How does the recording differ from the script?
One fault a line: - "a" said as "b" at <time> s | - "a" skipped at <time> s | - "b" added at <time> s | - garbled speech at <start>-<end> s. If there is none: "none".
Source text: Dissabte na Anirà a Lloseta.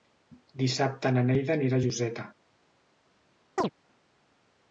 - "Neida" added at 1.3 s